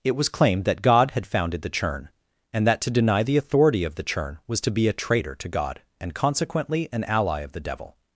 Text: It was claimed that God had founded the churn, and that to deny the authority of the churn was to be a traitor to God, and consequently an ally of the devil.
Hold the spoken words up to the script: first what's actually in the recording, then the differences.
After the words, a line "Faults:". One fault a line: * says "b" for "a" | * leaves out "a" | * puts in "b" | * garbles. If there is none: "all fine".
It was claimed that God had founded the churn, and that to deny the authority of the churn was to be a traitor to God, and consequently an ally of the devil.
Faults:
all fine